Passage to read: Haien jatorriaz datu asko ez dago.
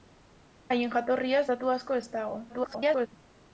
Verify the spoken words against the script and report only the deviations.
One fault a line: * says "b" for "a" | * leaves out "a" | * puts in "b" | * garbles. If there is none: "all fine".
* garbles